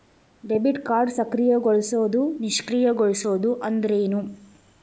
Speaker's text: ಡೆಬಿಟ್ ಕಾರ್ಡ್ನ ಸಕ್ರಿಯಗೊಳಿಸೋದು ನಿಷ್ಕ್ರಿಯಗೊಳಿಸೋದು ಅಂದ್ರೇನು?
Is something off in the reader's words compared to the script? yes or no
no